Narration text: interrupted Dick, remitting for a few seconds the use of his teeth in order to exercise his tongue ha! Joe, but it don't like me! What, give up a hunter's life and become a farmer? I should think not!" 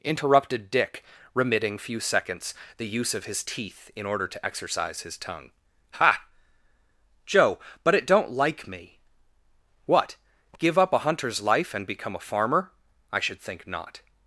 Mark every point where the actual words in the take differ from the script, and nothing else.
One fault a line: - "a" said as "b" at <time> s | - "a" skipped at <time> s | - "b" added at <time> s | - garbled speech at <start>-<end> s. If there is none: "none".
- "for" skipped at 1.8 s